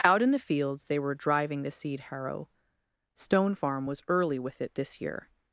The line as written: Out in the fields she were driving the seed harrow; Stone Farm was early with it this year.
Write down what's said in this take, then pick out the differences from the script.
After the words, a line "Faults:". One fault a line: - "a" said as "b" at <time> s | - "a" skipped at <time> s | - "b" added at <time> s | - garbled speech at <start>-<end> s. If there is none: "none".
Out in the fields they were driving the seed harrow; Stone Farm was early with it this year.
Faults:
- "she" said as "they" at 0.8 s